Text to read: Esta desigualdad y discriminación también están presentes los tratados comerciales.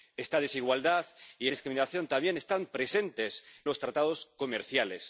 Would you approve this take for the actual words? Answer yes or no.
yes